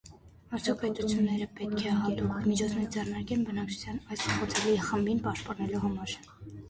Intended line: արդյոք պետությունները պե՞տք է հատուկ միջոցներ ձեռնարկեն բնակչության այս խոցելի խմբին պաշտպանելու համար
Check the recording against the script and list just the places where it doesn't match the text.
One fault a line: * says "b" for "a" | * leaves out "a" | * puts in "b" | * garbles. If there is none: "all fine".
all fine